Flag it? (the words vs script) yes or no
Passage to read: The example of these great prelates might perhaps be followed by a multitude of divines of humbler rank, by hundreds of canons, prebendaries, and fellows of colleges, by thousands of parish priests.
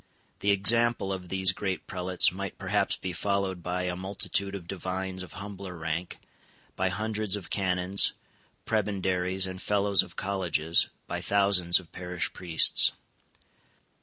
no